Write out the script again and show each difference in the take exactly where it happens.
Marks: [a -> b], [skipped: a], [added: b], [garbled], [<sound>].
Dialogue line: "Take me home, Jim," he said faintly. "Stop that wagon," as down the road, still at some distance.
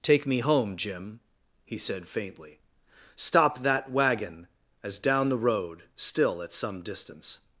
"Take me home, Jim," he said faintly. "Stop that wagon," as down the road, still at some distance.